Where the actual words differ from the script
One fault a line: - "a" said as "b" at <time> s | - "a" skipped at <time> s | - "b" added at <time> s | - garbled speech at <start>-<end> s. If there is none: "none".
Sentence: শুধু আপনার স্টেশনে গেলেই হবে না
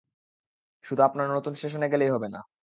- "নতুন" added at 1.3 s